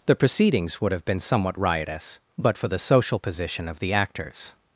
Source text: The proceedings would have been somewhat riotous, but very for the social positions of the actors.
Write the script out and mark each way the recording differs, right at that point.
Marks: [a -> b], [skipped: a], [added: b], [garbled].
The proceedings would have been somewhat riotous, but [skipped: very] for the social [positions -> position] of the actors.